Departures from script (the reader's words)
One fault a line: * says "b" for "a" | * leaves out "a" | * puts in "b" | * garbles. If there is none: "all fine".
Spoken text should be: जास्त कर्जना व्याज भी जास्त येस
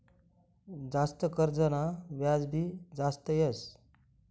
all fine